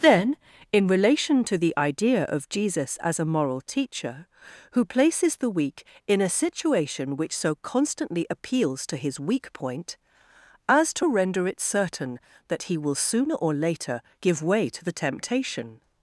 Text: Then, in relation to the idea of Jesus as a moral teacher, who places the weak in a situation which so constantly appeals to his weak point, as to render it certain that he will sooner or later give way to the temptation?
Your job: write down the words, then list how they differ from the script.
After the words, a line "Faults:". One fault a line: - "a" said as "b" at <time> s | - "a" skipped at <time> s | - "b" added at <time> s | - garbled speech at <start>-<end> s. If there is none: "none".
Then, in relation to the idea of Jesus as a moral teacher, who places the weak in a situation which so constantly appeals to his weak point, as to render it certain that he will sooner or later give way to the temptation?
Faults:
none